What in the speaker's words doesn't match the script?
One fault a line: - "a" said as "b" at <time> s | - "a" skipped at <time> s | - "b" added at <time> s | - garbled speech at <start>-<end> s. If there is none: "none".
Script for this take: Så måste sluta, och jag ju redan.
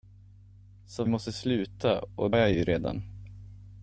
none